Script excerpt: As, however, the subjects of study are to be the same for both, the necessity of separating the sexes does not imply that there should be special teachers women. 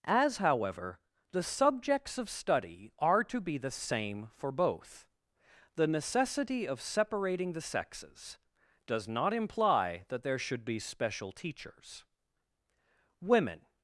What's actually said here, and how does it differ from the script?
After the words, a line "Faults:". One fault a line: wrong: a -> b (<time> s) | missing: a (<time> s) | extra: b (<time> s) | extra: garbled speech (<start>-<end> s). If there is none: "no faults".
As, however, the subjects of study are to be the same for both, the necessity of separating the sexes does not imply that there should be special teachers women.
Faults:
no faults